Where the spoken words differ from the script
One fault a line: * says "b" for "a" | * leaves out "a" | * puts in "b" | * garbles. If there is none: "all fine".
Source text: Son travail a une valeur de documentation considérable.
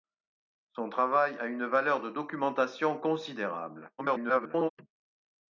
* garbles